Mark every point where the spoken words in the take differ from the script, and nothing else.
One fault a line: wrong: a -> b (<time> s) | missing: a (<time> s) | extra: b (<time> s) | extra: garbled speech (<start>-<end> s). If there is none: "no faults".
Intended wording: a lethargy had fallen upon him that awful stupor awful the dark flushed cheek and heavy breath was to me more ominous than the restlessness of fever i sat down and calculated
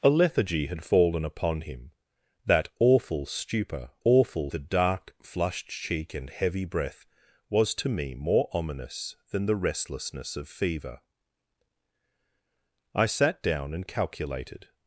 no faults